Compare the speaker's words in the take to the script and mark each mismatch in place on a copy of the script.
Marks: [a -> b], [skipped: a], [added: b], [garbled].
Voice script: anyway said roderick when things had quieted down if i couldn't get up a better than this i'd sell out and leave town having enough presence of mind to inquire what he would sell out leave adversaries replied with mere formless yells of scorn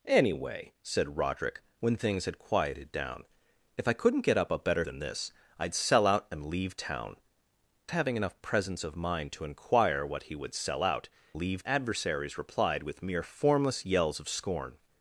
anyway said roderick when things had quieted down if i couldn't get up a better than this i'd sell out and leave town having enough presence of mind to inquire what he would sell out leave adversaries replied with mere formless yells of scorn